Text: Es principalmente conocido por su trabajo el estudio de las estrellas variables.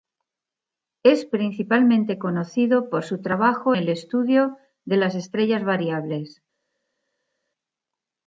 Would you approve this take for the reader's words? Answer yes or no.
yes